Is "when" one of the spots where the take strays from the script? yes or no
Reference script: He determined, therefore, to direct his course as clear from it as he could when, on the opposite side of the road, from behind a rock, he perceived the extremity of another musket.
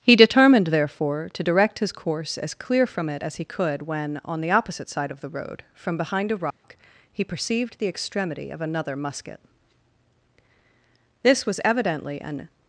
no